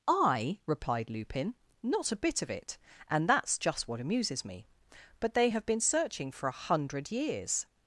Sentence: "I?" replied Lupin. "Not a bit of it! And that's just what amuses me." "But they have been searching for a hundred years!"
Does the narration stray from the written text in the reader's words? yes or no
no